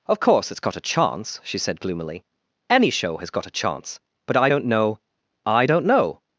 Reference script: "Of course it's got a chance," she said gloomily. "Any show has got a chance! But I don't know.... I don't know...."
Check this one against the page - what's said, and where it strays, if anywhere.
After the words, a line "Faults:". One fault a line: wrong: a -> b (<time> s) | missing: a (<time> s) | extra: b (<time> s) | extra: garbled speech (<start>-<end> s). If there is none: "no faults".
"Of course it's got a chance," she said gloomily. "Any show has got a chance! But I don't know.... I don't know...."
Faults:
no faults